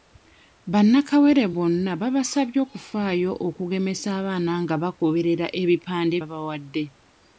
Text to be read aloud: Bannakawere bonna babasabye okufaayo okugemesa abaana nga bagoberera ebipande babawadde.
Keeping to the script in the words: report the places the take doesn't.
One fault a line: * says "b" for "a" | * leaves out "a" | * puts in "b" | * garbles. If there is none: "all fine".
all fine